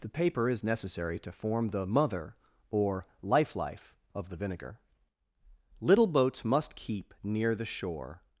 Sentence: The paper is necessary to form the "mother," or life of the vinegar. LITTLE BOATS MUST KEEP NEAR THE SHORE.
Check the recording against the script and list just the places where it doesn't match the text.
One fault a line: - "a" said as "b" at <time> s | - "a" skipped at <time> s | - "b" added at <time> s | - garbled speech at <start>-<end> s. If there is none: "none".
- "life" added at 3.5 s